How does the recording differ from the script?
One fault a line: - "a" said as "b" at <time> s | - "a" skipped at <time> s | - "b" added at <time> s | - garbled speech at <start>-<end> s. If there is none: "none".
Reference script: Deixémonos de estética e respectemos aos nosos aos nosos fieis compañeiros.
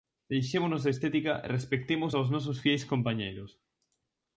- "aos nosos" skipped at 2.6 s